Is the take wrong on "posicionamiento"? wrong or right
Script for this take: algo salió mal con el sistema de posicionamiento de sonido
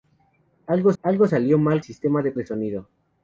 wrong